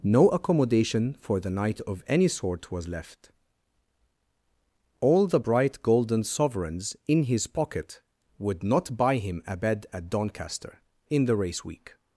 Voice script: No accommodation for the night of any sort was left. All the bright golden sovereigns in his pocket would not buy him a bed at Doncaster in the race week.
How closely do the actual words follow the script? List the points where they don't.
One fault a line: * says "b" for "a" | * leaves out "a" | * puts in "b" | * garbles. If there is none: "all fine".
all fine